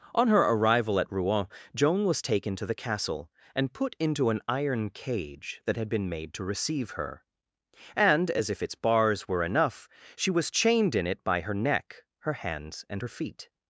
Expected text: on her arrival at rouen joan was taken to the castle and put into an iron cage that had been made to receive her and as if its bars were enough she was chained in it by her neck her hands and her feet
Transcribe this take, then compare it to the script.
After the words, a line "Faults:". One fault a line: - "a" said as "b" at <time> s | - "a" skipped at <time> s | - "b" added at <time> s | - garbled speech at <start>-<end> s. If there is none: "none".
on her arrival at rouen joan was taken to the castle and put into an iron cage that had been made to receive her and as if its bars were enough she was chained in it by her neck her hands and her feet
Faults:
none